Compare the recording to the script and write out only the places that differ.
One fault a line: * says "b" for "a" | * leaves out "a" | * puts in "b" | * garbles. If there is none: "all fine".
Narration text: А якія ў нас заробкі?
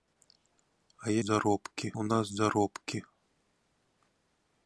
* says "заробкі" for "якія"